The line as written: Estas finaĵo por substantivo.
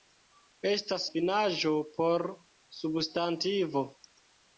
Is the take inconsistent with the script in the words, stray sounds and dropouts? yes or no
no